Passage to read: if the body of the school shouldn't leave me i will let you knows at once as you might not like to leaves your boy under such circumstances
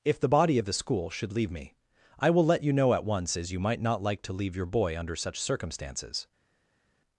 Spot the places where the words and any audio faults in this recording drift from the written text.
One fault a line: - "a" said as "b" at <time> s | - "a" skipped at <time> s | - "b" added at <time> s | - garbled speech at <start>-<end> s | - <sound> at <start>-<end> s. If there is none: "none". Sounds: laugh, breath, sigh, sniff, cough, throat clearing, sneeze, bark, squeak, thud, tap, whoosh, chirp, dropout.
- "shouldn't" said as "should" at 1.1 s
- "knows" said as "know" at 2.7 s
- "leaves" said as "leave" at 4.3 s